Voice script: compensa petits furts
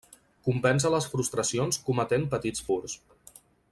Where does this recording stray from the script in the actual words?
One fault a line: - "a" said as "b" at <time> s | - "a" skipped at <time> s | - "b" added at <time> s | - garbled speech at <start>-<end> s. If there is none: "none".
- "les frustracions cometent" added at 0.9 s